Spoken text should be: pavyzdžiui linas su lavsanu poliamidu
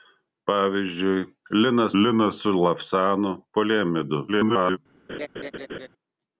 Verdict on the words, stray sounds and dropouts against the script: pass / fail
fail